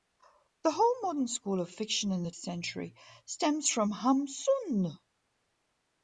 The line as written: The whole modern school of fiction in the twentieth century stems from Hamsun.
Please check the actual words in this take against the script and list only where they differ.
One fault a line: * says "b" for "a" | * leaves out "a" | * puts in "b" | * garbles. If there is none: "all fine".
* leaves out "twentieth"